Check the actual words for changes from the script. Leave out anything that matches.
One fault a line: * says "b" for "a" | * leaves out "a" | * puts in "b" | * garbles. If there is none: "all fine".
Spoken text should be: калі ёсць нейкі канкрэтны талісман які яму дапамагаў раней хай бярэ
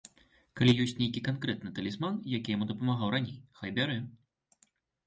all fine